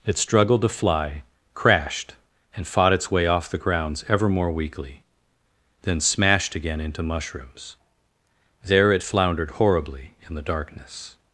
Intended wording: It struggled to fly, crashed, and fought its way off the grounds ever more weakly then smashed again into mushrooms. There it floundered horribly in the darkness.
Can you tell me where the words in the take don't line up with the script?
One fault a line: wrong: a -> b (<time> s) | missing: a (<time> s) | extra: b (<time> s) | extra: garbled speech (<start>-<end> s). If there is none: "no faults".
no faults